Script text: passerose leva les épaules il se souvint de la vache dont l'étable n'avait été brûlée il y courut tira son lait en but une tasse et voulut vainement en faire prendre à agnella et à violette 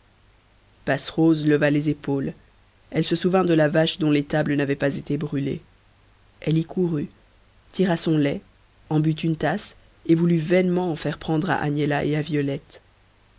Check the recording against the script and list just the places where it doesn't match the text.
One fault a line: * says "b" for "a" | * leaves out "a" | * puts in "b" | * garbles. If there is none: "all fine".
* says "elle" for "il"
* puts in "pas"
* says "elle" for "il"